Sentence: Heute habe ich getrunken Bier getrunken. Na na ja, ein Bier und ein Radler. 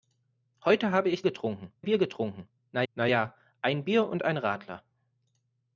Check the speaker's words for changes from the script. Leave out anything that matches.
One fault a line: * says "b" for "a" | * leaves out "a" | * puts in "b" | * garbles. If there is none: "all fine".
all fine